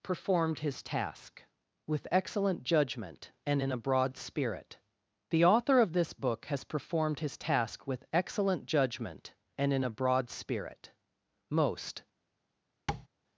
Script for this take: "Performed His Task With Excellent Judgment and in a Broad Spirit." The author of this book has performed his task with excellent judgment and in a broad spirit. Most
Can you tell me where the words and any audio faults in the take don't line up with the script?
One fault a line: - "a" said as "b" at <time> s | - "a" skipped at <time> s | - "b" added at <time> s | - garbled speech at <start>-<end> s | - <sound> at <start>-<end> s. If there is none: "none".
- tap at 12.9-13.1 s